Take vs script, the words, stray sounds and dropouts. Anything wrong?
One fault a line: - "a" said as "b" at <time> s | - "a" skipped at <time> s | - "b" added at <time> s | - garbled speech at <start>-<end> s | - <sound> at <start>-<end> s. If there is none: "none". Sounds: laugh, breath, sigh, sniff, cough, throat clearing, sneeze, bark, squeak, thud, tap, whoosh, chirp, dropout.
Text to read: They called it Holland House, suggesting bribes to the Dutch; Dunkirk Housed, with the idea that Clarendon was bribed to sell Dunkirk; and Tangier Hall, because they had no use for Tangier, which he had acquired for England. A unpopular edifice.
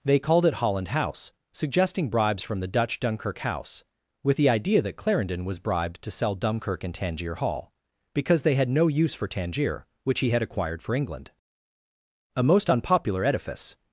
- "to" said as "from" at 2.4 s
- "Housed" said as "House" at 3.4 s
- "most" added at 12.4 s